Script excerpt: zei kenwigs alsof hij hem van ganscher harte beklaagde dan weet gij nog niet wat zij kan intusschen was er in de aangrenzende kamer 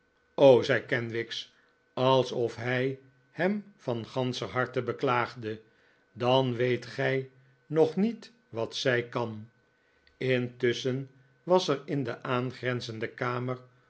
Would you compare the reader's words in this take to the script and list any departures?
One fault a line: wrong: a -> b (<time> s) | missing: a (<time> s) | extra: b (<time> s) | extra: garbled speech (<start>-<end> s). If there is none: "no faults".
no faults